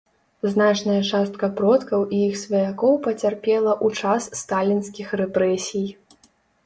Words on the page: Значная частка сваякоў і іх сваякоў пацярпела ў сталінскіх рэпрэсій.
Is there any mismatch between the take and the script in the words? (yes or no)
yes